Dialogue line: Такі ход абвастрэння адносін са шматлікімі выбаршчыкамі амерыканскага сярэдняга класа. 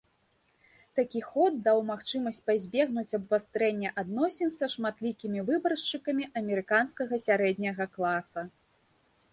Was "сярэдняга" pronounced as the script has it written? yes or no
yes